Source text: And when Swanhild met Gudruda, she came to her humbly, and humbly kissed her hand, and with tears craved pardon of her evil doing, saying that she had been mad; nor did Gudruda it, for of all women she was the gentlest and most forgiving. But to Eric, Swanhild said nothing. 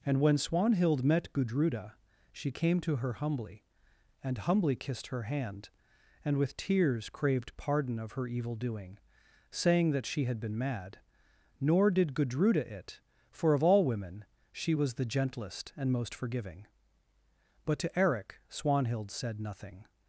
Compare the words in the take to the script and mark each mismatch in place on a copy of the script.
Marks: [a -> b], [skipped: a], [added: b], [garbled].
And when Swanhild met Gudruda, she came to her humbly, and humbly kissed her hand, and with tears craved pardon of her evil doing, saying that she had been mad; nor did Gudruda it, for of all women she was the gentlest and most forgiving. But to Eric, Swanhild said nothing.